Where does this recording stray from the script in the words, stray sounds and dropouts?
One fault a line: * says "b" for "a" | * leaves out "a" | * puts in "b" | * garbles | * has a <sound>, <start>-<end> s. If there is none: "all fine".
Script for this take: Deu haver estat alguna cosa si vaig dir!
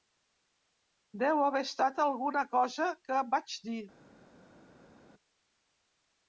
* says "que" for "si"